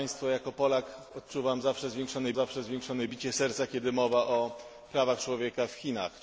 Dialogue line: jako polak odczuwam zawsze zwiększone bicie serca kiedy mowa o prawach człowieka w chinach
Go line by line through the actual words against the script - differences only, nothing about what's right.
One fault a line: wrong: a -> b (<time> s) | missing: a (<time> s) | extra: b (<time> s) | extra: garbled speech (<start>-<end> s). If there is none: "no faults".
extra: zawsze zwiększone (2.3 s)